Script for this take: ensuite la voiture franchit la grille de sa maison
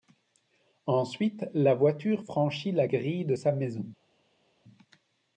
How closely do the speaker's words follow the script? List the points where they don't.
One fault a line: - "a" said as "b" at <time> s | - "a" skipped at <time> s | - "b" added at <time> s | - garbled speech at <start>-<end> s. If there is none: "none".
none